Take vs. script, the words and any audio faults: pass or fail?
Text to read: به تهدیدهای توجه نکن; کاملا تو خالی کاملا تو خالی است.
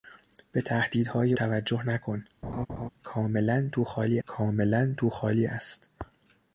fail